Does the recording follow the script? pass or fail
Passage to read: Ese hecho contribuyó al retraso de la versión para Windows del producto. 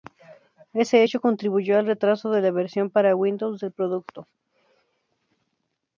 pass